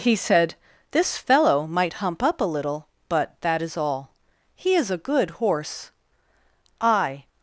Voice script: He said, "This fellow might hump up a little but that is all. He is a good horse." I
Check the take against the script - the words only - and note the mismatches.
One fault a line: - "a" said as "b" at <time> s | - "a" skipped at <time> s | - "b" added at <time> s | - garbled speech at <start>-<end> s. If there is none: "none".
none